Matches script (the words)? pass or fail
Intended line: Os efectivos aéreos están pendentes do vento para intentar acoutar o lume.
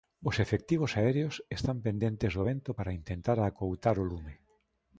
pass